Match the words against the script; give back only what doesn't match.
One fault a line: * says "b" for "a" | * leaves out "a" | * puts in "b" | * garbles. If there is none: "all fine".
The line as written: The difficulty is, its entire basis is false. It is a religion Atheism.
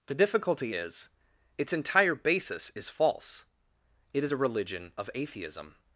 * puts in "of"